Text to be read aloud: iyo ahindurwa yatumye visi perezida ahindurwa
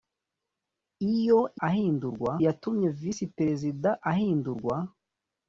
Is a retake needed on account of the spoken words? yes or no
no